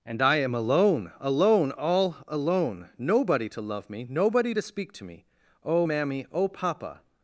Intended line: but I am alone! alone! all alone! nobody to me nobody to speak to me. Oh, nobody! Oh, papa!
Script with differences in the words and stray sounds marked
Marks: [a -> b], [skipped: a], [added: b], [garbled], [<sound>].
[but -> and] I am alone! alone! all alone! nobody to [added: love] me nobody to speak to me. Oh, [nobody! -> mammy] Oh, papa!